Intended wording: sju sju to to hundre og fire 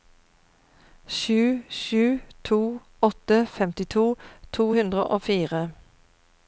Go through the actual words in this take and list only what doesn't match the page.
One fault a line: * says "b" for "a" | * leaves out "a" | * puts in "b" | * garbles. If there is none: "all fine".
* puts in "åtte femtito"